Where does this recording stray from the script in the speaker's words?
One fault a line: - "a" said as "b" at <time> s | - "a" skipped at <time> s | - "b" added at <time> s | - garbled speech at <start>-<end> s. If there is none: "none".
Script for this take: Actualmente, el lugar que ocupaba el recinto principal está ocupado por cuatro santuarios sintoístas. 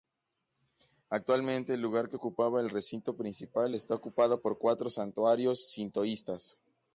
none